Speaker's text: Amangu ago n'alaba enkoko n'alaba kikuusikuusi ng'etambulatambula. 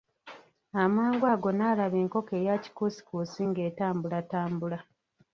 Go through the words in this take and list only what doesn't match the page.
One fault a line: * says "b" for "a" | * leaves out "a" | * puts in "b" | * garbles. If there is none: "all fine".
* says "eya" for "n'alaba"